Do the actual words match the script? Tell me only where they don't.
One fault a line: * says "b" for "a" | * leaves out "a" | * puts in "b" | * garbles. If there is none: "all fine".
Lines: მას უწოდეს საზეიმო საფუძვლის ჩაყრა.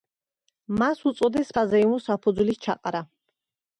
all fine